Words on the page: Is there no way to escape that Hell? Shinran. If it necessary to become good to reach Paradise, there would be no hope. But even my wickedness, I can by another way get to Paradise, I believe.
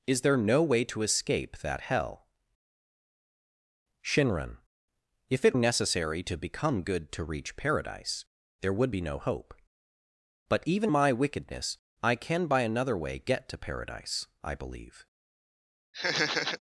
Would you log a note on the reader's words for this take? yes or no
no